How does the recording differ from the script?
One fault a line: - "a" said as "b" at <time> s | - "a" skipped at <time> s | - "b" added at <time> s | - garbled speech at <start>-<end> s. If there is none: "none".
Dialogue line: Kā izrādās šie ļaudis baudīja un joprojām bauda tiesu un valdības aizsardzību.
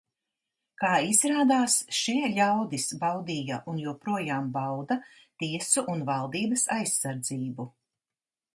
none